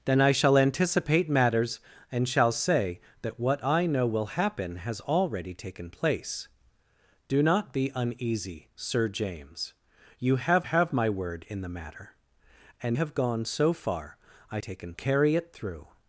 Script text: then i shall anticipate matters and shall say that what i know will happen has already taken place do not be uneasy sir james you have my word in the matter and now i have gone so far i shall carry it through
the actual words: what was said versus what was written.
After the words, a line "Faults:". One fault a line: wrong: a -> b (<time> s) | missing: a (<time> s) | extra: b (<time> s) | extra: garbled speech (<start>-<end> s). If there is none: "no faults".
then i shall anticipate matters and shall say that what i know will happen has already taken place do not be uneasy sir james you have have my word in the matter and have gone so far i taken carry it through
Faults:
extra: have (10.6 s)
missing: now i (13.0 s)
wrong: shall -> taken (14.6 s)